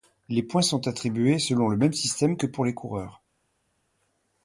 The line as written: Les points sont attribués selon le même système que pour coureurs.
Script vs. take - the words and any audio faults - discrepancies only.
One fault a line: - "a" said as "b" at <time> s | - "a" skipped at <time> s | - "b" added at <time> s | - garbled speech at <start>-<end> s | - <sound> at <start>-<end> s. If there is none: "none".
- "les" added at 2.6 s